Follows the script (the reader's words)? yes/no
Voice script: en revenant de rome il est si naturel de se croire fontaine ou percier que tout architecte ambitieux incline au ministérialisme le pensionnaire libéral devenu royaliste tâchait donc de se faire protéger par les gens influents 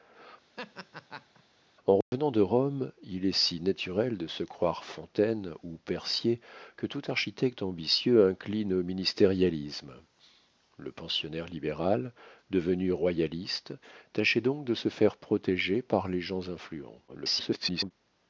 no